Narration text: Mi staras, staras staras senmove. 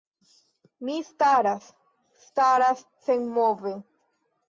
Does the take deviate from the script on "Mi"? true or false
false